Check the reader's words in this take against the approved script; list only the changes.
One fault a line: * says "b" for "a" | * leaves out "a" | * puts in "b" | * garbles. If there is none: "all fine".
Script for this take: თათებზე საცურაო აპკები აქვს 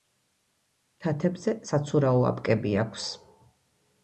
all fine